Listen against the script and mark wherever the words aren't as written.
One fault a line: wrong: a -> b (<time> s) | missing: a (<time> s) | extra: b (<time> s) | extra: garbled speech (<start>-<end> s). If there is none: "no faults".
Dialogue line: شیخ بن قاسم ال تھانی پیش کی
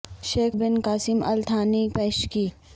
no faults